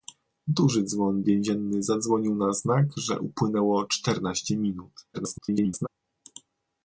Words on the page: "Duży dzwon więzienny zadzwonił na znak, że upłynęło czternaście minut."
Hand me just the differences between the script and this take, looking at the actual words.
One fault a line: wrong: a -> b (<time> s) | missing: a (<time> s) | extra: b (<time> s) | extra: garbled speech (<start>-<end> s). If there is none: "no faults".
extra: garbled speech (5.1-5.9 s)